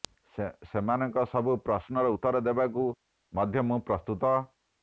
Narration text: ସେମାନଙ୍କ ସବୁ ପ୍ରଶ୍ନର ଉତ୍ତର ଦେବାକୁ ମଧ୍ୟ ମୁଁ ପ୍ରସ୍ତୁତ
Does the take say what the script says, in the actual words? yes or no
yes